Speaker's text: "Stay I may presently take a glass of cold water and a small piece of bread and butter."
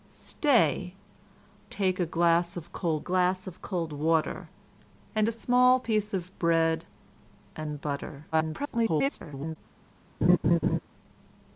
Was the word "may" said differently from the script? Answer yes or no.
yes